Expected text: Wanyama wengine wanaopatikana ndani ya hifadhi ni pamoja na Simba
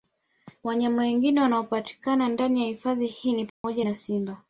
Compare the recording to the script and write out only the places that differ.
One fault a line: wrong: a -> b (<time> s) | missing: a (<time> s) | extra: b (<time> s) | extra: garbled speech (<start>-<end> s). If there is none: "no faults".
extra: hii (3.1 s)